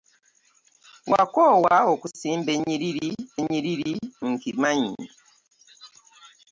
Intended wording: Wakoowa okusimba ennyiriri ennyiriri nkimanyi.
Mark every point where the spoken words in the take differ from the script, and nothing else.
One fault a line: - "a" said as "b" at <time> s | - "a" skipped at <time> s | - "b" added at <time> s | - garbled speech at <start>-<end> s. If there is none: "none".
none